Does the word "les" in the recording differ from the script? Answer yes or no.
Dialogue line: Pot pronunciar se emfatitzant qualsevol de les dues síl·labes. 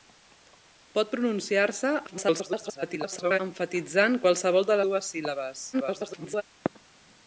yes